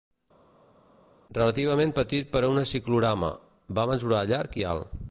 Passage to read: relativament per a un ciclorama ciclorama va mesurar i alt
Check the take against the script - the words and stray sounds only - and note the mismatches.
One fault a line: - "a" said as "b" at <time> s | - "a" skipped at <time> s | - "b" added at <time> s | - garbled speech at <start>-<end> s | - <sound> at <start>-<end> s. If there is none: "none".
- "petit" added at 2.0 s
- "ciclorama" skipped at 3.3 s
- "llarg" added at 4.3 s